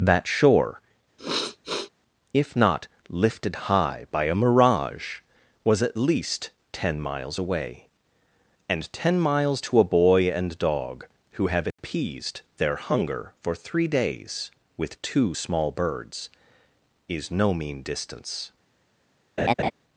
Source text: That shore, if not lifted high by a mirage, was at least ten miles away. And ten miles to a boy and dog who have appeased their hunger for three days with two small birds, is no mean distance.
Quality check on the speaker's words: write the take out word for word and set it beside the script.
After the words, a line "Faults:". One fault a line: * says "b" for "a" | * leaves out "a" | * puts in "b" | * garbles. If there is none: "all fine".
That shore, if not lifted high by a mirage, was at least ten miles away. And ten miles to a boy and dog who have appeased their hunger for three days with two small birds, is no mean distance.
Faults:
all fine